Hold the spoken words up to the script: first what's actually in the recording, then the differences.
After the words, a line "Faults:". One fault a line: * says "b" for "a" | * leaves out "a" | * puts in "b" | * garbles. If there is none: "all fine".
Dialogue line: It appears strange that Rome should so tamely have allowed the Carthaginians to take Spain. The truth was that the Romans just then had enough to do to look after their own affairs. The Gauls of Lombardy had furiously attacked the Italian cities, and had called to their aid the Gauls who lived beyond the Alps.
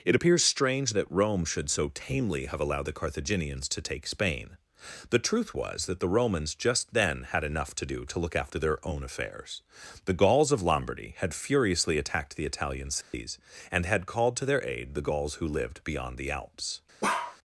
It appears strange that Rome should so tamely have allowed the Carthaginians to take Spain. The truth was that the Romans just then had enough to do to look after their own affairs. The Gauls of Lombardy had furiously attacked the Italian cities, and had called to their aid the Gauls who lived beyond the Alps.
Faults:
all fine